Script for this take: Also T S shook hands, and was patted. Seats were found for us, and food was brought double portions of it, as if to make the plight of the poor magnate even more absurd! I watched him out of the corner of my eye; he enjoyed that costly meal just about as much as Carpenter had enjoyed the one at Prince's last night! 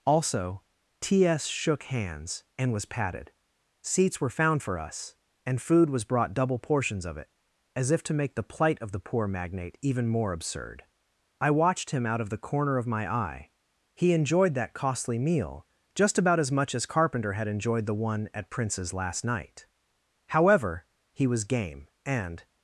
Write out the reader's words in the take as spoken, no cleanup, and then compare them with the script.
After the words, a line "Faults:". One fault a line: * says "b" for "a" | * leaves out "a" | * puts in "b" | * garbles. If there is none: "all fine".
Also T S shook hands, and was patted. Seats were found for us, and food was brought double portions of it, as if to make the plight of the poor magnate even more absurd! I watched him out of the corner of my eye; he enjoyed that costly meal just about as much as Carpenter had enjoyed the one at Prince's last night! However, he was game, and
Faults:
* puts in "However he was game and"